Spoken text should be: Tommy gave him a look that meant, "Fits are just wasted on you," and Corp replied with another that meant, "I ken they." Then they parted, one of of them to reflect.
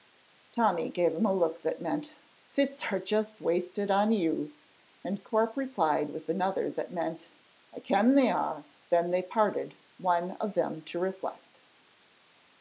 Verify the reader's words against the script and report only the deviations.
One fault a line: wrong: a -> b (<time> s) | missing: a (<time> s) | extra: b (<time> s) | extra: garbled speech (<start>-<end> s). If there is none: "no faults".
extra: are (8.3 s)
missing: of (10.5 s)